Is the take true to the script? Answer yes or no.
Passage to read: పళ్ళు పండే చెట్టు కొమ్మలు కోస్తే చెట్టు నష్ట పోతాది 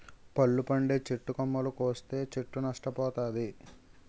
yes